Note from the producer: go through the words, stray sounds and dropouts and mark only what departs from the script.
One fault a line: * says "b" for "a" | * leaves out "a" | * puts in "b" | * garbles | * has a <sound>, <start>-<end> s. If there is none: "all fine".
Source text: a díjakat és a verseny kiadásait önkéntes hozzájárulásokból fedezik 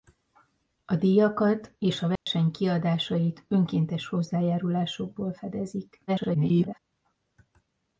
* has a dropout, 2.2-2.3 s
* garbles